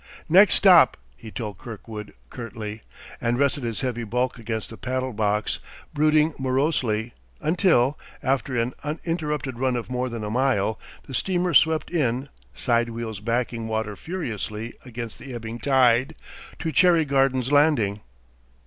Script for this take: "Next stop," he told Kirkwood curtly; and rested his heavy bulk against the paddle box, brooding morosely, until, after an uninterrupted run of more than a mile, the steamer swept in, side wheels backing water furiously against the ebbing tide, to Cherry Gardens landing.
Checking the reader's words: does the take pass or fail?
pass